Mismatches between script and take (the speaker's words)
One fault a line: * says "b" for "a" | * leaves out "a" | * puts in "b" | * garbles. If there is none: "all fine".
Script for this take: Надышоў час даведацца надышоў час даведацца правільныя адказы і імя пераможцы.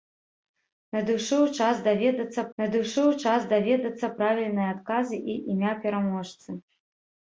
all fine